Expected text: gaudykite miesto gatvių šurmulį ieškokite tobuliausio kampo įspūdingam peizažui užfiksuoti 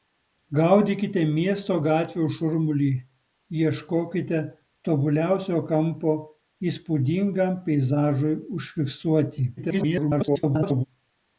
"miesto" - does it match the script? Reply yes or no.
yes